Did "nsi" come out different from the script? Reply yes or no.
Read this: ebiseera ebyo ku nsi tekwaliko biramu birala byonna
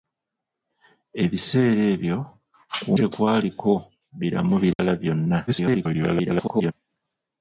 yes